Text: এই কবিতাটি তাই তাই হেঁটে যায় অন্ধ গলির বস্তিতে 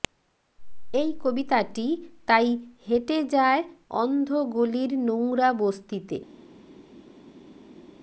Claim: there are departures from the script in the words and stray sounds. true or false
true